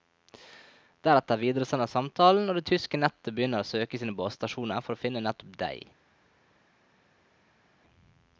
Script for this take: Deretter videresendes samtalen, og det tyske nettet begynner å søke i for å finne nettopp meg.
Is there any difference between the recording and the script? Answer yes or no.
yes